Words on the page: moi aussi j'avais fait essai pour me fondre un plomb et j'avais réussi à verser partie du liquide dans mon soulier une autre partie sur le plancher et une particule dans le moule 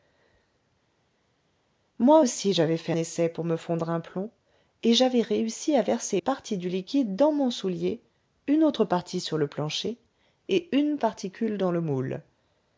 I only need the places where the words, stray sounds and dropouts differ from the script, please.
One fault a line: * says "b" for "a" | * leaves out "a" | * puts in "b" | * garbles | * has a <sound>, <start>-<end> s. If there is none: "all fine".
all fine